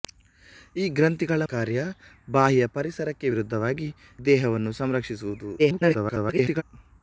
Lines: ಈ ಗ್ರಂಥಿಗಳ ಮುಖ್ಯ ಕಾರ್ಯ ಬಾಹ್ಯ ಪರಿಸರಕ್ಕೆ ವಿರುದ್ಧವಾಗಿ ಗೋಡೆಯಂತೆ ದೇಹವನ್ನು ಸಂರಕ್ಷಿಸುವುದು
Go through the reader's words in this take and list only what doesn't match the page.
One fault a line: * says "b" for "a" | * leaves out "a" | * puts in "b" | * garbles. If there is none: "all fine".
* leaves out "ಮುಖ್ಯ"
* leaves out "ಗೋಡೆಯಂತೆ"
* garbles